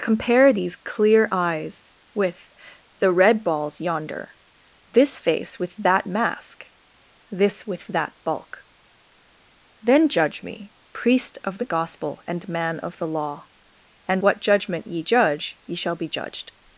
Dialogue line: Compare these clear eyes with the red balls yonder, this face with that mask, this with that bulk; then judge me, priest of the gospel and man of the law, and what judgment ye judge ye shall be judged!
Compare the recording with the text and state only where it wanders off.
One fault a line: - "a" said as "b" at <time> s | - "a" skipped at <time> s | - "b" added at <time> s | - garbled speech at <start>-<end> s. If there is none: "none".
none